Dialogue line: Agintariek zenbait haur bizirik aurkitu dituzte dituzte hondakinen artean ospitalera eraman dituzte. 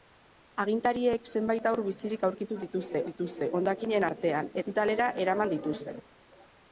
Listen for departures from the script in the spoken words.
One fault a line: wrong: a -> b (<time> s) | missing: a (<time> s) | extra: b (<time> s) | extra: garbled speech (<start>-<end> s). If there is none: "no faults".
no faults